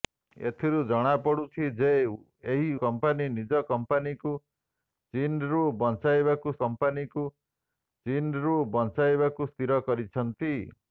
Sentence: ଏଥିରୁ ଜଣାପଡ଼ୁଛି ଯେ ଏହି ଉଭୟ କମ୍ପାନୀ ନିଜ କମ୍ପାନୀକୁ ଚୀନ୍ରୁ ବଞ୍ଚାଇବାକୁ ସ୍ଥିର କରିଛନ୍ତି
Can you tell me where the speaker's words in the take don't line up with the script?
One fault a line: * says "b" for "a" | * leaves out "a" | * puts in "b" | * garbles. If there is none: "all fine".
* leaves out "ଉଭୟ"
* puts in "କମ୍ପାନୀକୁ ଚୀନ୍ରୁ ବଞ୍ଚାଇବାକୁ"